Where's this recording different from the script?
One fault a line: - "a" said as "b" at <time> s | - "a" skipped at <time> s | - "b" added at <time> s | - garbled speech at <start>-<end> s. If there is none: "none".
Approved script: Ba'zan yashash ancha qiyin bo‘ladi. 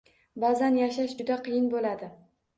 - "ancha" said as "juda" at 1.2 s